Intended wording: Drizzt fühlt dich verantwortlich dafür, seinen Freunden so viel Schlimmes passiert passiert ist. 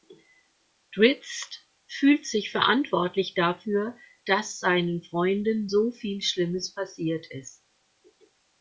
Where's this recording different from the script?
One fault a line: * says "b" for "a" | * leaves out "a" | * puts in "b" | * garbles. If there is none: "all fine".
* says "sich" for "dich"
* puts in "dass"
* leaves out "passiert"